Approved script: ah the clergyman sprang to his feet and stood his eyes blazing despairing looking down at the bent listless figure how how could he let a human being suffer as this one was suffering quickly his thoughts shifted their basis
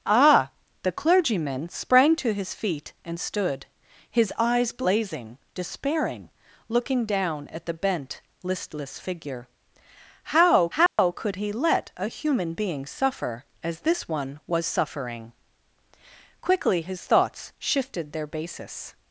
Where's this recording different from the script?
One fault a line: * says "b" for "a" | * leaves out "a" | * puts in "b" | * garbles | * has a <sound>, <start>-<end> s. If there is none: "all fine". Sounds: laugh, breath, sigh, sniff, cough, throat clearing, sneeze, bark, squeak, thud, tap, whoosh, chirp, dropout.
* has a dropout, 10.9-11.0 s